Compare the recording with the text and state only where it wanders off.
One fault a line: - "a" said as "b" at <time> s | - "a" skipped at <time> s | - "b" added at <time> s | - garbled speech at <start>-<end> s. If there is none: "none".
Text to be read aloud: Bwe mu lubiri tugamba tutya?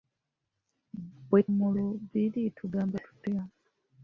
none